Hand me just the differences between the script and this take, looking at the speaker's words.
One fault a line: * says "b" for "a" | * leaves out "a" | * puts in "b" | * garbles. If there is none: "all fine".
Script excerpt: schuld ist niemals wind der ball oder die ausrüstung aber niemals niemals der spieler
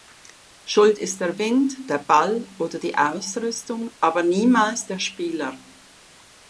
* says "der" for "niemals"
* leaves out "niemals"